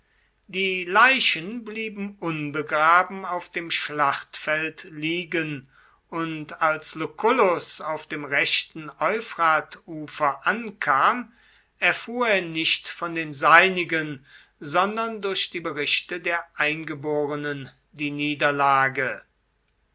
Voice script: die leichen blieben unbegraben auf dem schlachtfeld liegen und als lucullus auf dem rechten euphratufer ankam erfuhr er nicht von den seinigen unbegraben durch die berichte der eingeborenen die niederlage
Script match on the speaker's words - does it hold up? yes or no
no